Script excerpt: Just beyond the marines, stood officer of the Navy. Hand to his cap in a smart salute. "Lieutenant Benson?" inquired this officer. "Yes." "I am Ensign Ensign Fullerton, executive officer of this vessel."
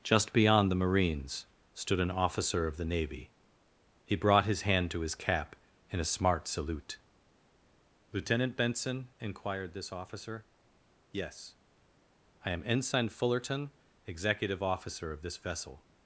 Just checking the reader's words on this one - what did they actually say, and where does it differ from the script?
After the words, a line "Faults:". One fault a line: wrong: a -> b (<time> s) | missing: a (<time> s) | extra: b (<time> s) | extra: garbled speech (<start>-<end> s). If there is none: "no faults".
Just beyond the marines, stood an officer of the Navy. He brought his hand to his cap in a smart salute. "Lieutenant Benson?" inquired this officer. "Yes." "I am Ensign Fullerton, executive officer of this vessel."
Faults:
extra: an (2.0 s)
extra: He brought his (4.0 s)
missing: Ensign (13.1 s)